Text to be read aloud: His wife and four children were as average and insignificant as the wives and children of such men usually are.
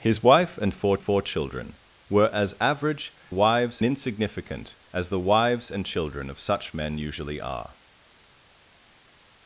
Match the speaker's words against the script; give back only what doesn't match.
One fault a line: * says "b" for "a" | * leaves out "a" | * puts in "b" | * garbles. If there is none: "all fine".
* puts in "four"
* says "wives" for "and"